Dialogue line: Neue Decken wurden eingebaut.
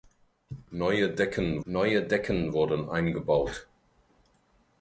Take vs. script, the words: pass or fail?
fail